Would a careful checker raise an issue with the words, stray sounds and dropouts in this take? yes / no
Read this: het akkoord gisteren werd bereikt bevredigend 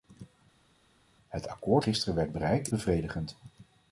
no